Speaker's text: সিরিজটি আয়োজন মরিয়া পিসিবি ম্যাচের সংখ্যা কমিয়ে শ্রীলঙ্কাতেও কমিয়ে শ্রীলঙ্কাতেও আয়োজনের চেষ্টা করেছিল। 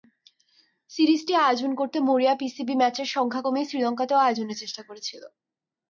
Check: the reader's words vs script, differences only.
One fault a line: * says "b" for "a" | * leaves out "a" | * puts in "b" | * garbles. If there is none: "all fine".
* puts in "করতে"
* leaves out "কমিয়ে শ্রীলঙ্কাতেও"